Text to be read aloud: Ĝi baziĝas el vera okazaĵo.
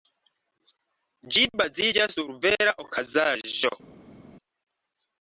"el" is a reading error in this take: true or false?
true